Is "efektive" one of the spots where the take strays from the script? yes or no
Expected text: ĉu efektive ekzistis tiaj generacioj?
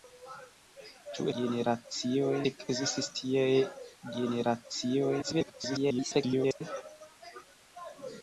yes